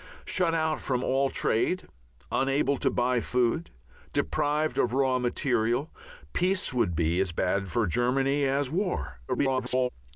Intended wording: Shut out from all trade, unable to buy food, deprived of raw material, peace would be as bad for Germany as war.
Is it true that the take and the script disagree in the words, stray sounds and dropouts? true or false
true